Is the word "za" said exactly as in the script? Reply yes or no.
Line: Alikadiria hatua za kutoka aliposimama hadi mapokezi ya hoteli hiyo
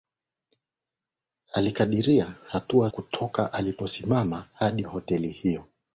no